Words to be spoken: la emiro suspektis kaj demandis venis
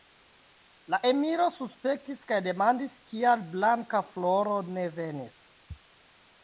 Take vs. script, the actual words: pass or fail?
fail